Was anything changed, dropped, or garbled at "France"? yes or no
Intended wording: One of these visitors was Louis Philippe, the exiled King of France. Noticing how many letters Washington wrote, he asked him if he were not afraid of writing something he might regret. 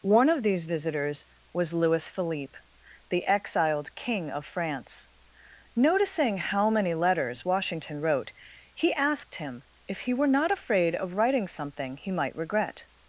no